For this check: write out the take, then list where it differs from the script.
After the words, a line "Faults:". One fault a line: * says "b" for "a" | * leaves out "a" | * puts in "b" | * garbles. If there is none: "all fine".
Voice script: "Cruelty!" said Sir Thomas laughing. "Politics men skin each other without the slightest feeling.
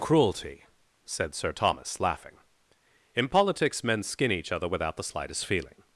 "Cruelty!" said Sir Thomas laughing. "In politics men skin each other without the slightest feeling.
Faults:
* puts in "In"